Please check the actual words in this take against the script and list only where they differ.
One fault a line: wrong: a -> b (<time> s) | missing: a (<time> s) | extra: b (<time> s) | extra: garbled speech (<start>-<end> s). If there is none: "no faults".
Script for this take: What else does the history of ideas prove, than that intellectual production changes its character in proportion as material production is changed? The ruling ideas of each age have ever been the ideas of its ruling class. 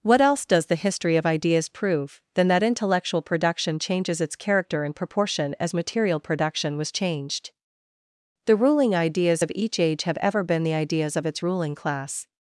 wrong: is -> was (6.8 s)